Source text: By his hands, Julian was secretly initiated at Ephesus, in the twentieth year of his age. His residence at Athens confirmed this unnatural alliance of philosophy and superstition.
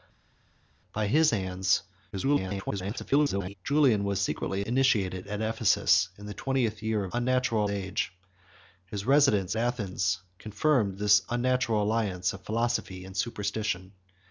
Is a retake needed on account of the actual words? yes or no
yes